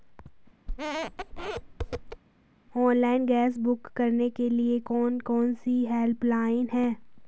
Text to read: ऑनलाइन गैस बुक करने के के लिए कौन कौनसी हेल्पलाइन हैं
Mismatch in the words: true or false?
true